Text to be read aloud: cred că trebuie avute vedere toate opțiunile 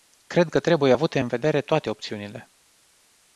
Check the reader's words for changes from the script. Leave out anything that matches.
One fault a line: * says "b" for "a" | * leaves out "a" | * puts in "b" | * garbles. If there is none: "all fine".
* puts in "în"